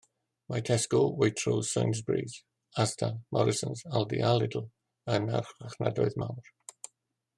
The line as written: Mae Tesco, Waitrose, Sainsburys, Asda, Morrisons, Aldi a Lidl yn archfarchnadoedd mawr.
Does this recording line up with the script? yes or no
yes